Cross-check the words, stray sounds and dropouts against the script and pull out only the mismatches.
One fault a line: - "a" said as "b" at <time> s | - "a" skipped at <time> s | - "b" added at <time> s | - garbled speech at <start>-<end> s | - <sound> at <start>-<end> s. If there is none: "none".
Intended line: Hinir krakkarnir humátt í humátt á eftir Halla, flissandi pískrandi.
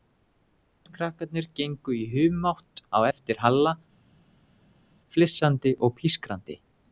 - "humátt" said as "gengu" at 1.6 s
- "og" added at 5.9 s